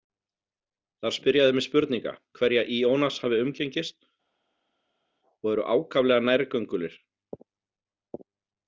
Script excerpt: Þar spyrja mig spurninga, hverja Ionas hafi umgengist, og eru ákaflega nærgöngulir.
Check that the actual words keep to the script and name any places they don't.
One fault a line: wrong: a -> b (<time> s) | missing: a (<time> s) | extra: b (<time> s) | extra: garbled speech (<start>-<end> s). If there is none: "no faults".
extra: þeir (1.5 s)